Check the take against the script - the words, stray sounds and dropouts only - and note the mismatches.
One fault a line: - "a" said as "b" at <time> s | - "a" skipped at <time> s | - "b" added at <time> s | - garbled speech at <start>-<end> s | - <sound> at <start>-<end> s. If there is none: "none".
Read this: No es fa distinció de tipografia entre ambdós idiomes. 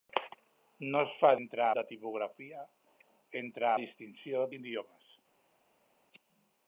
- "distinció" said as "entre" at 1.4 s
- "ambdós" said as "distinció" at 3.8 s